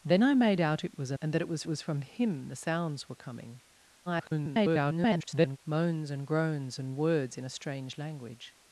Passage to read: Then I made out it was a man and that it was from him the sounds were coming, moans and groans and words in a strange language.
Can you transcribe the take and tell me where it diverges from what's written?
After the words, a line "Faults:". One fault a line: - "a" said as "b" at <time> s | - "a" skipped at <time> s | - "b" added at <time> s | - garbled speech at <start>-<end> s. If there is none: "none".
Then I made out it was a and that it was was from him the sounds were coming, [garbled] moans and groans and words in a strange language.
Faults:
- "man" skipped at 1.2 s
- "was" added at 1.7 s
- garbled speech at 4.1-5.6 s